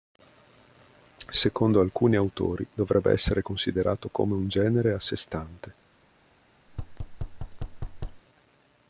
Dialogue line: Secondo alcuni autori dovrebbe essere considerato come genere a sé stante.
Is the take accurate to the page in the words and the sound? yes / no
no